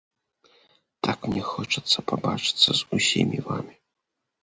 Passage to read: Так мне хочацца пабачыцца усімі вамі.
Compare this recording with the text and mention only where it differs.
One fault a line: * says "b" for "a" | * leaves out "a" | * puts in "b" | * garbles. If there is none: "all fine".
* puts in "з"